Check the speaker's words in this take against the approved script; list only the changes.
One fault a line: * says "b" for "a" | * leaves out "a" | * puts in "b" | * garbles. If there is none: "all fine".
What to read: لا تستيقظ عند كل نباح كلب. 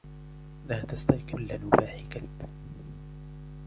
* leaves out "عند"